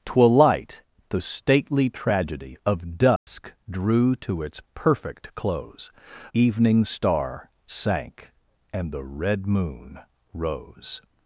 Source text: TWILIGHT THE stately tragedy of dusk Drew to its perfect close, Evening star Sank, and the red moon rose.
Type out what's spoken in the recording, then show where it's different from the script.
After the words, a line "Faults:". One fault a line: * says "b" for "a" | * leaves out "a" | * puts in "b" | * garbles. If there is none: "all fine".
TWILIGHT THE stately tragedy of dusk Drew to its perfect close, Evening star Sank, and the red moon rose.
Faults:
all fine